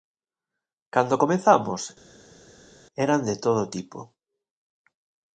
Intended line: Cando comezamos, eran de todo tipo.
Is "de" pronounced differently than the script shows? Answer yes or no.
no